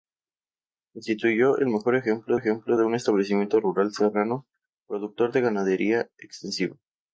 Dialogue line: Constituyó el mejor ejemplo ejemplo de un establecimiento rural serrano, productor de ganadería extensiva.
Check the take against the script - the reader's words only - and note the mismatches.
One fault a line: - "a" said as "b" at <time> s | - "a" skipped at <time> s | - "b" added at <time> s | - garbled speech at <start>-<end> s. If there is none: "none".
none